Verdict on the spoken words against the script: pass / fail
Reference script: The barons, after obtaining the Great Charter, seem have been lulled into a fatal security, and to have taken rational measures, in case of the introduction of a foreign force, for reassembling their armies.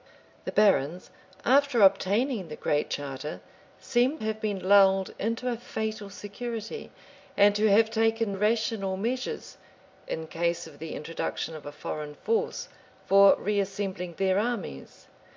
pass